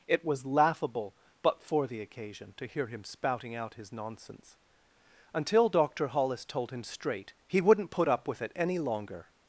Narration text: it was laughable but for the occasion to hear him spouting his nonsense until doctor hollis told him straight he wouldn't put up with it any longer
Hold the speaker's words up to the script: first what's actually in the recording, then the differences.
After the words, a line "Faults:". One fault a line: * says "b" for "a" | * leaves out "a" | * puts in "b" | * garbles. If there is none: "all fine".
it was laughable but for the occasion to hear him spouting out his nonsense until doctor hollis told him straight he wouldn't put up with it any longer
Faults:
* puts in "out"